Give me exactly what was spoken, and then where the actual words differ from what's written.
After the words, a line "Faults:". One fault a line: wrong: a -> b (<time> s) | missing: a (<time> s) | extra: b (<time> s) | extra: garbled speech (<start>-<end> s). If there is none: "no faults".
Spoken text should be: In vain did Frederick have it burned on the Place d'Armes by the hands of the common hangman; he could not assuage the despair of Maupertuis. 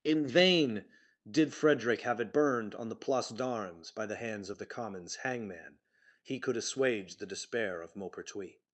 In vain did Frederick have it burned on the Place d'Armes by the hands of the commons hangman; he could assuage the despair of Maupertuis.
Faults:
wrong: common -> commons (4.6 s)
missing: not (6.6 s)